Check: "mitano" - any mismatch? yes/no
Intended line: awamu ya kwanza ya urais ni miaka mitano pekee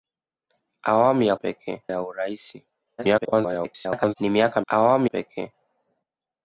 yes